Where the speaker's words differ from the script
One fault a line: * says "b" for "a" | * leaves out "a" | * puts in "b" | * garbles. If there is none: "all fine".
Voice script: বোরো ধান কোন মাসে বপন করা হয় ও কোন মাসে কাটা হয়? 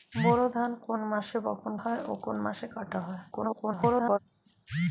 * leaves out "করা"
* garbles